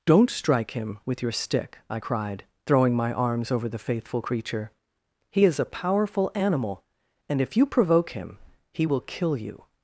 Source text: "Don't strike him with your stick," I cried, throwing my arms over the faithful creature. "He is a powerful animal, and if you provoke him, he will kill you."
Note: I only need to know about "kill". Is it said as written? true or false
true